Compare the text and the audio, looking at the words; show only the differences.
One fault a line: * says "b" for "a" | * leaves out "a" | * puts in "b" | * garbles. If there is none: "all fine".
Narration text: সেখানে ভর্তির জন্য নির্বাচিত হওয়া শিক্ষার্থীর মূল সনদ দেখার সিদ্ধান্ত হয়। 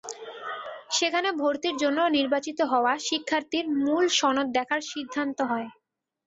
all fine